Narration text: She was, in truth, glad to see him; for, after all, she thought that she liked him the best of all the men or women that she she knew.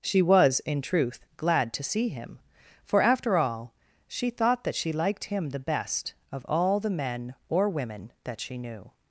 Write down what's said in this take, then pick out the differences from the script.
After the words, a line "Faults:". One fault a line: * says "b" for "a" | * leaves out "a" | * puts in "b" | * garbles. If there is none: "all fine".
She was, in truth, glad to see him; for, after all, she thought that she liked him the best of all the men or women that she knew.
Faults:
* leaves out "she"